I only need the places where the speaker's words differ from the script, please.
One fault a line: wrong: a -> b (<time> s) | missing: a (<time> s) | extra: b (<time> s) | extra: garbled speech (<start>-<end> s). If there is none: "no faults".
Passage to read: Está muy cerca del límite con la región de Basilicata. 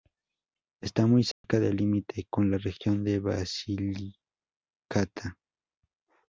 no faults